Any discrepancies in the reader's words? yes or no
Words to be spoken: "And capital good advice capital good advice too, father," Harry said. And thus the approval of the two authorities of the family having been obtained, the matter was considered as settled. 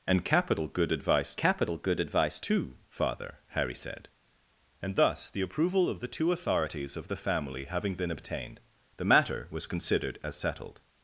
no